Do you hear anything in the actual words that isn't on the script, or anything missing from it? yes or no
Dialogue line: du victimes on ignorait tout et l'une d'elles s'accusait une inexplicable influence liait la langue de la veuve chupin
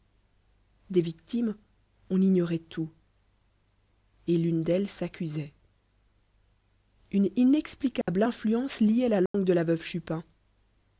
yes